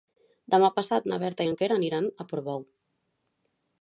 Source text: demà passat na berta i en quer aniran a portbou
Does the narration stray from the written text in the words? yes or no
no